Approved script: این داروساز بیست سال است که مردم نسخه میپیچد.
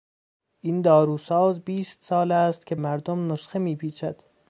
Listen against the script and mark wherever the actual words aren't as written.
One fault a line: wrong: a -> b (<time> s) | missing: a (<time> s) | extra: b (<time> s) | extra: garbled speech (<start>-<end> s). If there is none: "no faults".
no faults